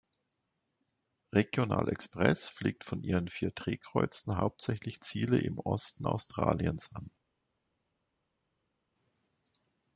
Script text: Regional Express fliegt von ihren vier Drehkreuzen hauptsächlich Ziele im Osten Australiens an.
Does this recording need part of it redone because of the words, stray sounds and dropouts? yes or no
no